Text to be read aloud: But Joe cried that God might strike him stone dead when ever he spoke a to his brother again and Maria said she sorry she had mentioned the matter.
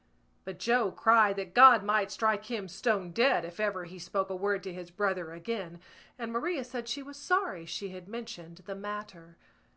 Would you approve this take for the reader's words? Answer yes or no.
no